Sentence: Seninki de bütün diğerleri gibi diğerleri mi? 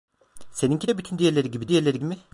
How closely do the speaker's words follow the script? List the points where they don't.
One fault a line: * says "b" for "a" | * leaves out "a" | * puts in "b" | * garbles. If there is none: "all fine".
all fine